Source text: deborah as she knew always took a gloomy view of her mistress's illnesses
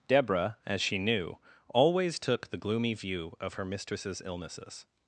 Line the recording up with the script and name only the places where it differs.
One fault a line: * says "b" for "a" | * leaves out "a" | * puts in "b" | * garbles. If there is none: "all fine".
* says "the" for "a"